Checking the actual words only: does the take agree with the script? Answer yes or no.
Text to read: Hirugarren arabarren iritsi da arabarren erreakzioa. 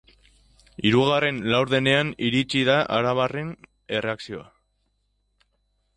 no